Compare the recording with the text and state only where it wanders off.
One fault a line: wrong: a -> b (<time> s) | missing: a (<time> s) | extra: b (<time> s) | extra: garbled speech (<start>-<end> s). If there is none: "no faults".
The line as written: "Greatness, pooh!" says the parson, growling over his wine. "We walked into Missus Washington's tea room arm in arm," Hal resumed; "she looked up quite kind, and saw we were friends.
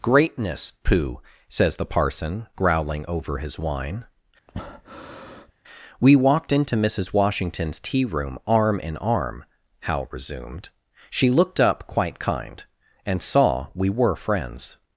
no faults